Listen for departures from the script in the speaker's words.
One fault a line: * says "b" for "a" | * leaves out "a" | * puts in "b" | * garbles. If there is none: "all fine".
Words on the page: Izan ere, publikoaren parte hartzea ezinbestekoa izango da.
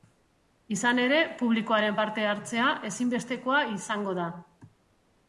all fine